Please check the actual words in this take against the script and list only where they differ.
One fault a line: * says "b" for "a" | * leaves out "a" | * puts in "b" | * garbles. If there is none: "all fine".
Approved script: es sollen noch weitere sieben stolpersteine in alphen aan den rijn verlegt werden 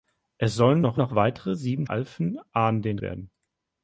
* puts in "noch"
* leaves out "stolpersteine in"
* leaves out "rijn verlegt"